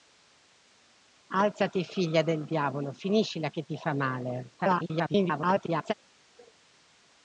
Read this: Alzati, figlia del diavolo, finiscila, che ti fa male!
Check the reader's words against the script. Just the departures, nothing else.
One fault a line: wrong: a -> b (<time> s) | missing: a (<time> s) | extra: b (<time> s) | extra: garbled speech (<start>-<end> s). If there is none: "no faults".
extra: garbled speech (4.6-5.9 s)